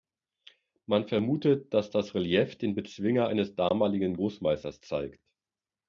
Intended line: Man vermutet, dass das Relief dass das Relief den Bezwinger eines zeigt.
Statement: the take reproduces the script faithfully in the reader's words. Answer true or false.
false